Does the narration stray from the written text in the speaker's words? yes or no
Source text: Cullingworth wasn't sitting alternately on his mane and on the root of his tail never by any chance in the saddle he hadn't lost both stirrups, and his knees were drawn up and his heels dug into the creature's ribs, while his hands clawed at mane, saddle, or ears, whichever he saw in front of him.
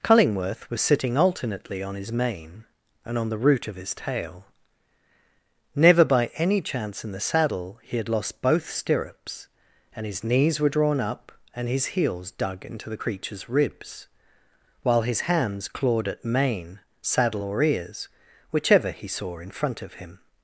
yes